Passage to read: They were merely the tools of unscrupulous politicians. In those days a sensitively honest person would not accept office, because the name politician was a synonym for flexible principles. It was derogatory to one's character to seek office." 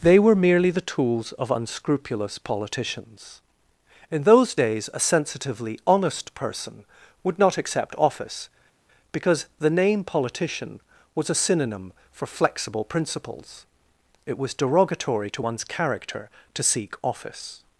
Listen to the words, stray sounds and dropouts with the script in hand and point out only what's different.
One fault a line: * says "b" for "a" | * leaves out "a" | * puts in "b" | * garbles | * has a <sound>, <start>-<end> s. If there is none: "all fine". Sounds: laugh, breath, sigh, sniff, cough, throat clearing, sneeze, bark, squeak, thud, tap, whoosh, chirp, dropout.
all fine